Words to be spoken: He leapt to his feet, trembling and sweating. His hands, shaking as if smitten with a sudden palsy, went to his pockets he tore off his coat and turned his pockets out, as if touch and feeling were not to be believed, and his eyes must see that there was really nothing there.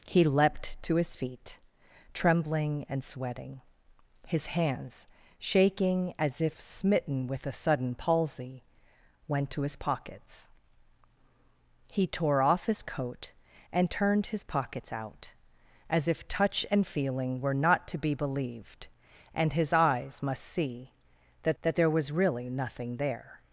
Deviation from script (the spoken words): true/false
true